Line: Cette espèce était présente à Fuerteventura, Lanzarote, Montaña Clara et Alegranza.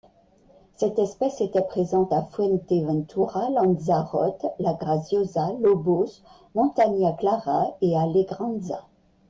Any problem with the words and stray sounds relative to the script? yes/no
yes